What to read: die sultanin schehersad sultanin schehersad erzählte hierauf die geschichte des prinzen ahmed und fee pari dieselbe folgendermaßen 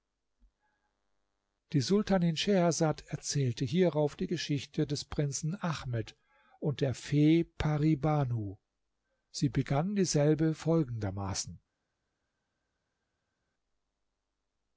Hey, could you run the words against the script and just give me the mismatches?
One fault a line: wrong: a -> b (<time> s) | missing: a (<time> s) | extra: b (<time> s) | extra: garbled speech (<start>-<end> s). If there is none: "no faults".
missing: sultanin schehersad (3.0 s)
extra: der (6.8 s)
extra: banu sie begann (8.0 s)